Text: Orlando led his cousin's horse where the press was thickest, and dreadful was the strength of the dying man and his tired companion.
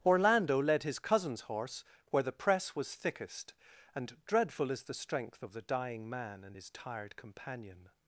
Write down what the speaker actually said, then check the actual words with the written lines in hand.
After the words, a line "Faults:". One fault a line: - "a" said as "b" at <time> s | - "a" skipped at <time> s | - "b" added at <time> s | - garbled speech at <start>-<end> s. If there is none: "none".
Orlando led his cousin's horse where the press was thickest, and dreadful is the strength of the dying man and his tired companion.
Faults:
- "was" said as "is" at 4.7 s